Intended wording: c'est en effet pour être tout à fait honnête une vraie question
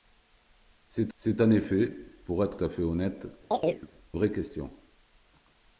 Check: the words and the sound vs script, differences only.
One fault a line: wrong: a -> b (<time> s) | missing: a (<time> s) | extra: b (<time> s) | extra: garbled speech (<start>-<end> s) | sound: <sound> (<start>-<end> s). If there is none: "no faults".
extra: c'est (1.1 s)
missing: tout (2.6 s)
missing: une (3.3 s)
sound: chirp (3.5-3.9 s)